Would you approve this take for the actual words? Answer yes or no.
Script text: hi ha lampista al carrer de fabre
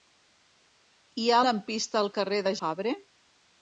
yes